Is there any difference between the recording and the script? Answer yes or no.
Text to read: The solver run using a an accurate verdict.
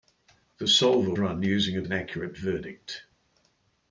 no